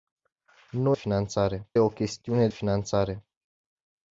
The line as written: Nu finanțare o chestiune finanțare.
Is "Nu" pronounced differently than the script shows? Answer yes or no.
no